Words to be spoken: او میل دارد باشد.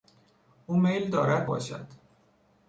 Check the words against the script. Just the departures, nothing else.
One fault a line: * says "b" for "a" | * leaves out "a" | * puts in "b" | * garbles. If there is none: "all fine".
all fine